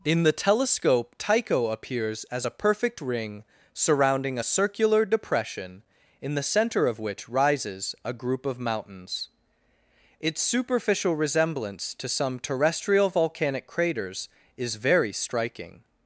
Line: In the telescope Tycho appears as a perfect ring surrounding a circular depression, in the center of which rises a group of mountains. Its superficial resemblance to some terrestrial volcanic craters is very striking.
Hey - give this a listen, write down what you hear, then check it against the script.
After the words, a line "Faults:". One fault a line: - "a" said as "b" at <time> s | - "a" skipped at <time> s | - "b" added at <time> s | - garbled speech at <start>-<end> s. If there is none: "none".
In the telescope Tycho appears as a perfect ring surrounding a circular depression, in the center of which rises a group of mountains. Its superficial resemblance to some terrestrial volcanic craters is very striking.
Faults:
none